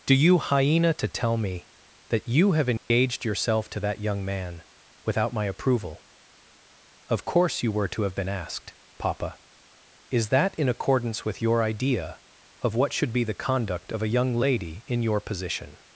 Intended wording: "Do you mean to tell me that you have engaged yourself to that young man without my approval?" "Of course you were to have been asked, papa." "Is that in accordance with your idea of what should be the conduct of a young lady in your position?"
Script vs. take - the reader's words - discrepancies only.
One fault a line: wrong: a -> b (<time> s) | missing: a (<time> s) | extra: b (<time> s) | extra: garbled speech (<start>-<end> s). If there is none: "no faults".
wrong: mean -> hyena (0.4 s)